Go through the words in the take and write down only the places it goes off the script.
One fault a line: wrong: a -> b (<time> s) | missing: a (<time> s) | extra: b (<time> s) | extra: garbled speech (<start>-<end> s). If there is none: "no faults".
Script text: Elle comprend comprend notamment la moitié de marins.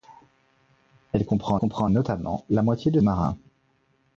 no faults